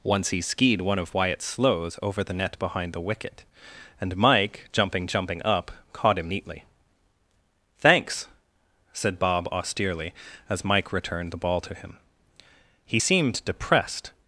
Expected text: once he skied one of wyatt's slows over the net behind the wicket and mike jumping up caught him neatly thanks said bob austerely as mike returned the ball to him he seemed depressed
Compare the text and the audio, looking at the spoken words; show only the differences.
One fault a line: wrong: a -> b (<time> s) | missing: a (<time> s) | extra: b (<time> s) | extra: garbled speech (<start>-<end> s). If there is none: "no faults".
extra: jumping (5.0 s)